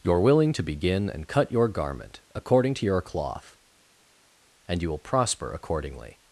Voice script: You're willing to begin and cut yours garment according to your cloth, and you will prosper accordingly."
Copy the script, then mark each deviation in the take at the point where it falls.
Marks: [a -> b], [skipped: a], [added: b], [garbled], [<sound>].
You're willing to begin and cut [yours -> your] garment according to your cloth, and you will prosper accordingly."